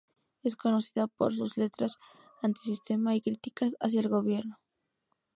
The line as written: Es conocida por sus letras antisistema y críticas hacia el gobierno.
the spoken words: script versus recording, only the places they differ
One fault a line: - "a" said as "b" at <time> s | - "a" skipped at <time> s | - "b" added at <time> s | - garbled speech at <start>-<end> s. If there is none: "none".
none